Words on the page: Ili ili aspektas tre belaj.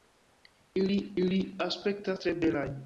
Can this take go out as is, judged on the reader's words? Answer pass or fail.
pass